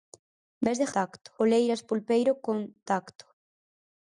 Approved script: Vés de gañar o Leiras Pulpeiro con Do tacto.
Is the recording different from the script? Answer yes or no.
yes